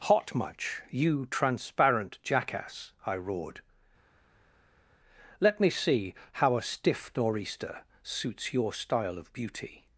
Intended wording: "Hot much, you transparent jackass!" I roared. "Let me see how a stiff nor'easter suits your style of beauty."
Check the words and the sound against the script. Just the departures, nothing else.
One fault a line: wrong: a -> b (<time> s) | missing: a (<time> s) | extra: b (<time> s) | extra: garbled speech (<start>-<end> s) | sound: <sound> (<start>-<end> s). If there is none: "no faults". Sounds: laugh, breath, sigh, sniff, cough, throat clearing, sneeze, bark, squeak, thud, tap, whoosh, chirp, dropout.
no faults